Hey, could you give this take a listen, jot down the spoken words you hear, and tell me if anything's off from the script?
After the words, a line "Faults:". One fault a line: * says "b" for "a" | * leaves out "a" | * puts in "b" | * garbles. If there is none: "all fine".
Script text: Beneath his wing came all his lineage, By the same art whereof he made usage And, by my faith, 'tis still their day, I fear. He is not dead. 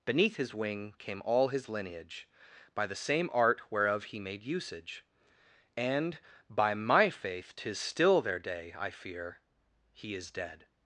Beneath his wing came all his lineage, By the same art whereof he made usage And, by my faith, 'tis still their day, I fear. He is dead.
Faults:
* leaves out "not"